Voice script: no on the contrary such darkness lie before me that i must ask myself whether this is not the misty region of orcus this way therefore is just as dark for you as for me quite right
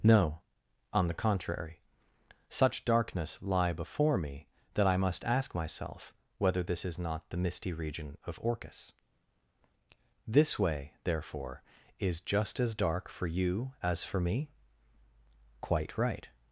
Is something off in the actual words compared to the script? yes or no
no